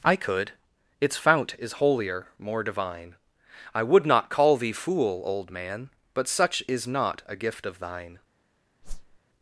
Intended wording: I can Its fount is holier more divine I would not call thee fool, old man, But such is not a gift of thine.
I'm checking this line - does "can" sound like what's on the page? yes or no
no